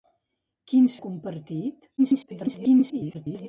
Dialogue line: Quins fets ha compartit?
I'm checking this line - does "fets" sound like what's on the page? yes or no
no